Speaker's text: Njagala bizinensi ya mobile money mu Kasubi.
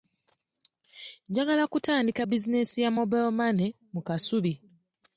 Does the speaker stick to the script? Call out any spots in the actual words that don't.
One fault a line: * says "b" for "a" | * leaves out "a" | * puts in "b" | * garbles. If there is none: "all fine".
* puts in "kutandika"